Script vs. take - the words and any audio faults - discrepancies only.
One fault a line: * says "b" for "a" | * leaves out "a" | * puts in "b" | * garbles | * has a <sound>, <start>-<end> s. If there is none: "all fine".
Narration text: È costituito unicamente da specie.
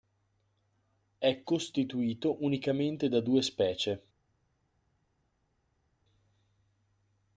* puts in "due"